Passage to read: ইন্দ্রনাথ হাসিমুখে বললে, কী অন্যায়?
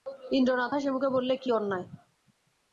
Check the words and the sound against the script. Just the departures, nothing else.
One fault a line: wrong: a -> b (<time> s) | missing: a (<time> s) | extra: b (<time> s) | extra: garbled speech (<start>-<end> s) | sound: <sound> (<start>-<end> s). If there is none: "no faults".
no faults